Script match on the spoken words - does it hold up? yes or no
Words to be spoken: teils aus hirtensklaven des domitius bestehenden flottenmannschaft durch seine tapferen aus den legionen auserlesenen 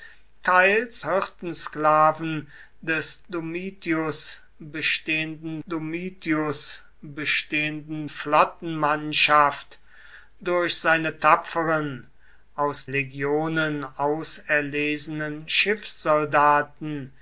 no